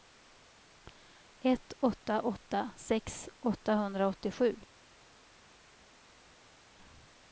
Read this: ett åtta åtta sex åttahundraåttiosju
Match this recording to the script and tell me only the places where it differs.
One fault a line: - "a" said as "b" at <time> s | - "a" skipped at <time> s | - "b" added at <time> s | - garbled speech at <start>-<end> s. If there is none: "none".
none